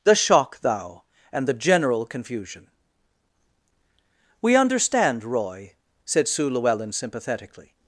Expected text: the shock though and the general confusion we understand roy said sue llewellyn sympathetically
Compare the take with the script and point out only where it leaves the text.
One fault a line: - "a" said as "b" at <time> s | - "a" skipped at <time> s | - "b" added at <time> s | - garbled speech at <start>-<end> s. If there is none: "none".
- "though" said as "thou" at 0.6 s